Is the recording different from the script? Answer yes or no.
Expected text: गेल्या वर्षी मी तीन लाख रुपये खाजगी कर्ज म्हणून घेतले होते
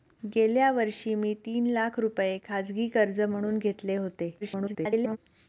yes